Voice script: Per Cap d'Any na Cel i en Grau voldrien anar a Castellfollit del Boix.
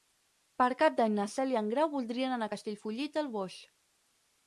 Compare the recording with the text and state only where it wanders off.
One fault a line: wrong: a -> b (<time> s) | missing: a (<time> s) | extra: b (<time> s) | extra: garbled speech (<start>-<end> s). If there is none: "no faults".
no faults